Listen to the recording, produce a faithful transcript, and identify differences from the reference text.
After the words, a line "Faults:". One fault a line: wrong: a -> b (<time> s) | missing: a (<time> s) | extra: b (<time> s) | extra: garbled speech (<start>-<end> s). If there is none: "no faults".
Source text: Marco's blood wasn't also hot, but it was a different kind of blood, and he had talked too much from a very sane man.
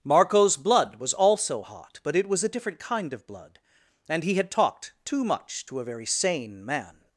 Marco's blood was also hot, but it was a different kind of blood, and he had talked too much to a very sane man.
Faults:
wrong: wasn't -> was (0.9 s)
wrong: from -> to (5.7 s)